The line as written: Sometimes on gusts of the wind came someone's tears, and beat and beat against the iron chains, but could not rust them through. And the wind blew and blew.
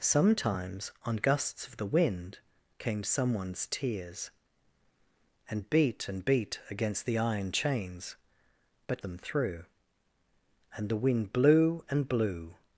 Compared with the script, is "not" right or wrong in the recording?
wrong